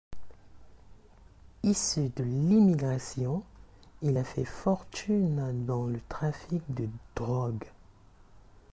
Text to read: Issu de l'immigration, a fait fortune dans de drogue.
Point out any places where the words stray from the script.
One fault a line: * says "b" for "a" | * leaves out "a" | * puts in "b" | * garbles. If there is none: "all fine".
* puts in "il"
* puts in "le trafic"